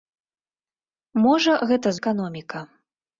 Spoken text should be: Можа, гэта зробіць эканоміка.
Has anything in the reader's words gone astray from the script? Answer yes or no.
yes